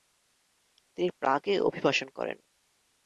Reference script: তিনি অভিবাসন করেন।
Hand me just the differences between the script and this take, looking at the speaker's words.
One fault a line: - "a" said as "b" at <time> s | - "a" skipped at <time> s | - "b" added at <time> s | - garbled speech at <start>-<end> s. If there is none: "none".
- "প্রাগে" added at 1.2 s